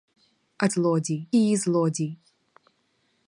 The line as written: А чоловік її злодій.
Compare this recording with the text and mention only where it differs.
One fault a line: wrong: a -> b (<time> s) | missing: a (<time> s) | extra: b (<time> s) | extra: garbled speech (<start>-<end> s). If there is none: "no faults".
wrong: чоловік -> злодій (0.7 s)